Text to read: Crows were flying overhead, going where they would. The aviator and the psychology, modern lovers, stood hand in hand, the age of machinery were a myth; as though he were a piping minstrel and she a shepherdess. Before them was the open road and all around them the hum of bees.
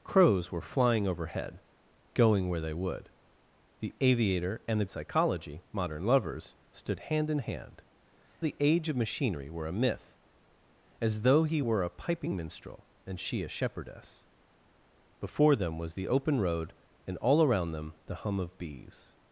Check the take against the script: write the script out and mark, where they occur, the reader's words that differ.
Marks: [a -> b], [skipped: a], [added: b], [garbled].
Crows were flying overhead, going where they would. The aviator and the psychology, modern lovers, stood hand in hand, the age of machinery were a myth; as though he were a piping minstrel and she a shepherdess. Before them was the open road and all around them the hum of bees.